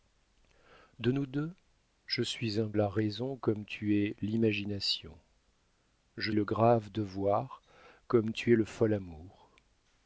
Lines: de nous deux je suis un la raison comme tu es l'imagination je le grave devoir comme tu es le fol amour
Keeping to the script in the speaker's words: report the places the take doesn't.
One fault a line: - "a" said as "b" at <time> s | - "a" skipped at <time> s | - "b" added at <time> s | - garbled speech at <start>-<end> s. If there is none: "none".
none